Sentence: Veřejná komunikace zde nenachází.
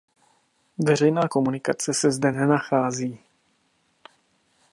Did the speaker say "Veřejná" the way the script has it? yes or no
yes